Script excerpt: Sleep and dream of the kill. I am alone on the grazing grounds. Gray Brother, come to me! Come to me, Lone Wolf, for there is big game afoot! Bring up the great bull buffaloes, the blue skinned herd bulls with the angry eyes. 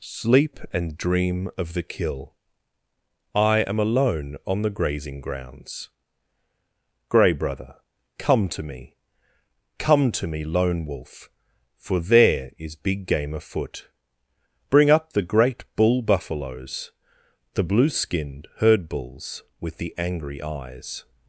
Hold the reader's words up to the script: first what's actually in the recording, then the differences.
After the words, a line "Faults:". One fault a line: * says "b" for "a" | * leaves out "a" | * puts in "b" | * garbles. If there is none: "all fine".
Sleep and dream of the kill. I am alone on the grazing grounds. Gray Brother, come to me! Come to me, Lone Wolf, for there is big game afoot! Bring up the great bull buffaloes, the blue skinned herd bulls with the angry eyes.
Faults:
all fine